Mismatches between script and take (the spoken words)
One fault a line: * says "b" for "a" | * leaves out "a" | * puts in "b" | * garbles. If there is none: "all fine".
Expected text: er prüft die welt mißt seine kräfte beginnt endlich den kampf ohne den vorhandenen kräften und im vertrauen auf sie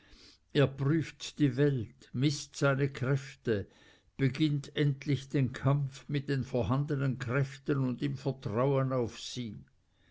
* says "mit" for "ohne"